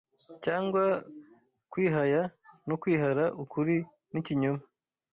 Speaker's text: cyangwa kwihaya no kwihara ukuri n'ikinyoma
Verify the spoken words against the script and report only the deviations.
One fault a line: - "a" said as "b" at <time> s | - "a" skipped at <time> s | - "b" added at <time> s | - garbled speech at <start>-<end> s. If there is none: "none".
none